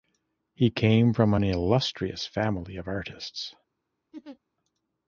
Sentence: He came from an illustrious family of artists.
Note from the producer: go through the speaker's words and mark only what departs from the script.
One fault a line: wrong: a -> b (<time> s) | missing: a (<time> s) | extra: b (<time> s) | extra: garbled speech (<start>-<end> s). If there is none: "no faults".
no faults